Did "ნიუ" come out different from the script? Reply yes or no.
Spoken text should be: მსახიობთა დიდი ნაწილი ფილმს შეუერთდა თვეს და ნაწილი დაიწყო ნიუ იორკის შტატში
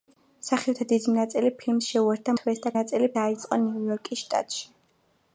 no